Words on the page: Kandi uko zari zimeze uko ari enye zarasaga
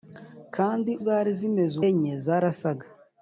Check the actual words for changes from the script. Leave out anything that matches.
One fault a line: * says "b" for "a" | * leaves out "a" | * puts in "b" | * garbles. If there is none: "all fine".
* leaves out "uko"
* leaves out "uko ari"